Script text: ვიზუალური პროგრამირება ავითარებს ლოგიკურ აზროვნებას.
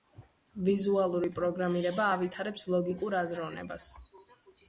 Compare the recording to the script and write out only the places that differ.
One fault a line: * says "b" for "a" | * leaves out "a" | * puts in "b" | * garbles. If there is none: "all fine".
all fine